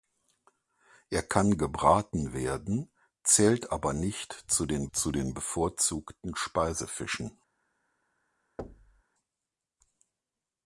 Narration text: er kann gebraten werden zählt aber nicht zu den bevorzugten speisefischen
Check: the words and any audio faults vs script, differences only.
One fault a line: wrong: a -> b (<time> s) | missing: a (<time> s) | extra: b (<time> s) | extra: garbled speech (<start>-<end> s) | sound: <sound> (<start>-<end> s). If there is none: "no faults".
extra: zu den (4.9 s)
sound: thud (8.6-9.0 s)